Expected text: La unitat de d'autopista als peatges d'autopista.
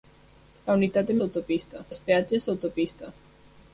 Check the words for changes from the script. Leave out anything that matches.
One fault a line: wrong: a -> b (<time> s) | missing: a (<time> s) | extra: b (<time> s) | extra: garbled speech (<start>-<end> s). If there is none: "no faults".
no faults